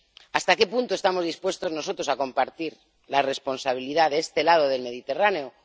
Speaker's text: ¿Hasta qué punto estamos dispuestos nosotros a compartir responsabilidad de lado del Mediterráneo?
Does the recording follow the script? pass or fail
fail